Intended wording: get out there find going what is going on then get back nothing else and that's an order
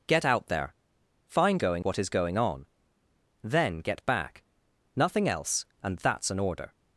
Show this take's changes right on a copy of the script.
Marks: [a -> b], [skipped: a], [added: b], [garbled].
get out there find going what is going on then get back nothing else and that's an order